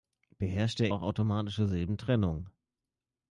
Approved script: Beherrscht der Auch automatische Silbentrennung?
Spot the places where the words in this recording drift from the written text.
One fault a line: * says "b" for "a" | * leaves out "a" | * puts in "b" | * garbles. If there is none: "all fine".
all fine